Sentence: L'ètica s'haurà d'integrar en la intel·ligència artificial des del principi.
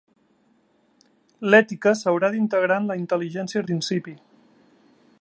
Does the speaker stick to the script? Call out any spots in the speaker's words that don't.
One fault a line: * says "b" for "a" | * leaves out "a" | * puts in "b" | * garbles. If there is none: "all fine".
* leaves out "artificial des del"